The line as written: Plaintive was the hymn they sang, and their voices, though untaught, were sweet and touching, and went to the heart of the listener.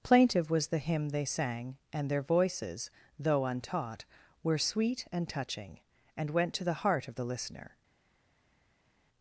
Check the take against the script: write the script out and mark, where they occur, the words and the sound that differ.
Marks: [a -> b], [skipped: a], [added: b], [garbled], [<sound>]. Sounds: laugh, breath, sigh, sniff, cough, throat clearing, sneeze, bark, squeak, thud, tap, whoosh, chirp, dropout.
Plaintive was the hymn they sang, and their voices, though untaught, were sweet and touching, and went to the heart of the listener.